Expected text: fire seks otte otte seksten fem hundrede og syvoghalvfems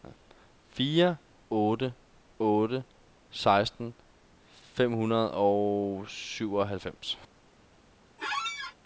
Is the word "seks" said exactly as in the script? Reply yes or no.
no